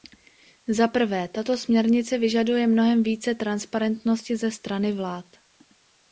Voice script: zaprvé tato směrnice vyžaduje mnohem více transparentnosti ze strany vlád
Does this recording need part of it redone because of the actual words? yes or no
no